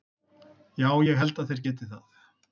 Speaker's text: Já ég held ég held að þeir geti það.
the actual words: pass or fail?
fail